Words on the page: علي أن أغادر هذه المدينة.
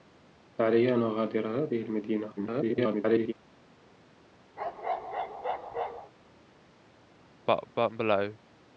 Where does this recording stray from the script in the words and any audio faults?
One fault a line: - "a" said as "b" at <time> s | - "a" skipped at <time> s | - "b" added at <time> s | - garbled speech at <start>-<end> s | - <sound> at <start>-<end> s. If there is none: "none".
- garbled speech at 2.4-3.3 s
- bark at 4.6-6.1 s
- cough at 7.5-8.4 s